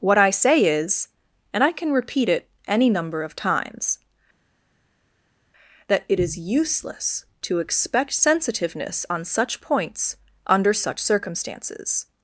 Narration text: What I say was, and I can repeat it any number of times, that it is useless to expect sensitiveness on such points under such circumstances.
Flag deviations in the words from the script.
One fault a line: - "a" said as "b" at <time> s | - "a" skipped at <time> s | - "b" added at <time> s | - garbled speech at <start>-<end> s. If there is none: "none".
- "was" said as "is" at 0.7 s